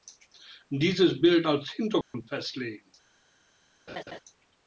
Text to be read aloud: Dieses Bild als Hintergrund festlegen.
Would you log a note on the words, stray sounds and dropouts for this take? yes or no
yes